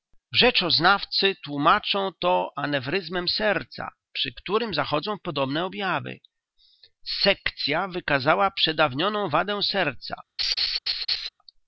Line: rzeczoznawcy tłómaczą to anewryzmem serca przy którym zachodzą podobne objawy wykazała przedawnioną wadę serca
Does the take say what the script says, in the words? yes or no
no